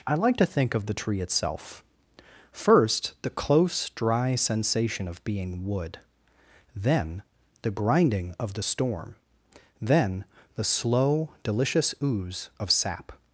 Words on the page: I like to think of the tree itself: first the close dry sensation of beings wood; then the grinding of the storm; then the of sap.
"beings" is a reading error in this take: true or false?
true